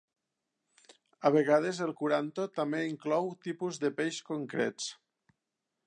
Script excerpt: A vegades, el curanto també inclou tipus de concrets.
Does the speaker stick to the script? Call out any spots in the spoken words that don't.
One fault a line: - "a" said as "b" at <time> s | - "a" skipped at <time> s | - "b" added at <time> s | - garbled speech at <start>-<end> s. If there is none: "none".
- "peix" added at 4.0 s